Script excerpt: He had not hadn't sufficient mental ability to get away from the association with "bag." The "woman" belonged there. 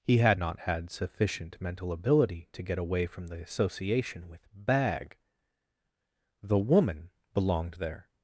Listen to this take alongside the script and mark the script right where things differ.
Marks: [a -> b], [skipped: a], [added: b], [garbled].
He had not [hadn't -> had] sufficient mental ability to get away from the association with "bag." The "woman" belonged there.